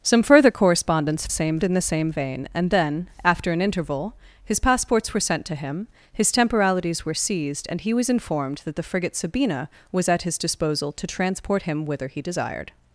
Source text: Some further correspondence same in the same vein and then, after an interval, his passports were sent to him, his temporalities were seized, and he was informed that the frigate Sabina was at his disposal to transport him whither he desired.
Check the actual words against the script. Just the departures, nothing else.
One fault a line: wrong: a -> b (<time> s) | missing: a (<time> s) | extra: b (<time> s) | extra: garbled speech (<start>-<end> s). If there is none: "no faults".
no faults